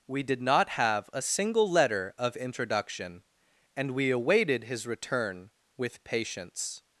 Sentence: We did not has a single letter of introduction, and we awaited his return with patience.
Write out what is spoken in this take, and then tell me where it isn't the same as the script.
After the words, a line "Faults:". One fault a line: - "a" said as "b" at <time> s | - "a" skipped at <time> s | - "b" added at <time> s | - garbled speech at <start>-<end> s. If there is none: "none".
We did not have a single letter of introduction, and we awaited his return with patience.
Faults:
- "has" said as "have" at 0.7 s